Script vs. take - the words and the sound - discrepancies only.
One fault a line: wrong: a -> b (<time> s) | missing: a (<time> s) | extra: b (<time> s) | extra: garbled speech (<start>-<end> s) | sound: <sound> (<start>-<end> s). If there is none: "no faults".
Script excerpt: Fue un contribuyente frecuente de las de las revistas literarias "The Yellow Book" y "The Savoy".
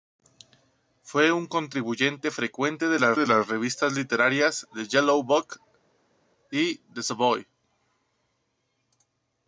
no faults